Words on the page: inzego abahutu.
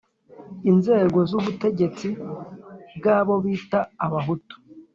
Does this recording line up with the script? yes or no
no